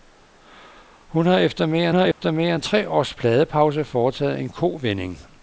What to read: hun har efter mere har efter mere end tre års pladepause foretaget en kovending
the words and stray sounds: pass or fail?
fail